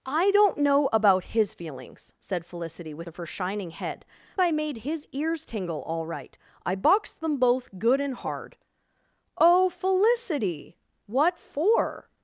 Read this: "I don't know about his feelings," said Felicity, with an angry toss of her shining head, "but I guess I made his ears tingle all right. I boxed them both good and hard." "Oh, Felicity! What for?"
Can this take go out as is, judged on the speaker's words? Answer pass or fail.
fail